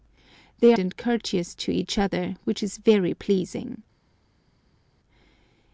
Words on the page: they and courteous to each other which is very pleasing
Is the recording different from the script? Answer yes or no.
no